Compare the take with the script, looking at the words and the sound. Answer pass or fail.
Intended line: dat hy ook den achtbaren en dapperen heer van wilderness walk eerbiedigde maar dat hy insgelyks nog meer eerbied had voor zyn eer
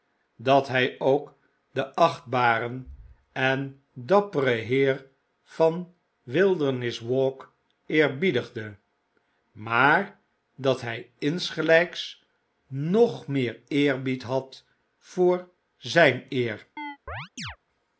fail